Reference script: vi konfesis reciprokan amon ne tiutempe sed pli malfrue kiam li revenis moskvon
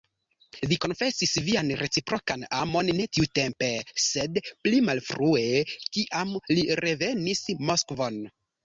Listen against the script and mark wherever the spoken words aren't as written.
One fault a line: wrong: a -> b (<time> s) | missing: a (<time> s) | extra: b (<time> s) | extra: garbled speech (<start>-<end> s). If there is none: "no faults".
extra: vian (1.5 s)